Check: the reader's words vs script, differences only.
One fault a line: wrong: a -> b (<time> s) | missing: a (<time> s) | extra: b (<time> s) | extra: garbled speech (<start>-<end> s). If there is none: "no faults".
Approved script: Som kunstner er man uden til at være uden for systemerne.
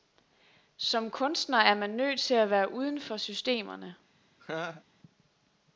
wrong: uden -> nødt (1.9 s)